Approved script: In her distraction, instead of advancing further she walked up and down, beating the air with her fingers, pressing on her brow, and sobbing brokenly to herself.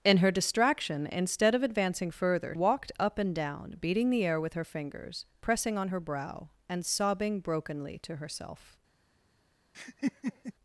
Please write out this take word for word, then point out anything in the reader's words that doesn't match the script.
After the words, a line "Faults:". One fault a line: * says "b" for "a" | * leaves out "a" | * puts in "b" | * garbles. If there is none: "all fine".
In her distraction, instead of advancing further walked up and down, beating the air with her fingers, pressing on her brow, and sobbing brokenly to herself.
Faults:
* leaves out "she"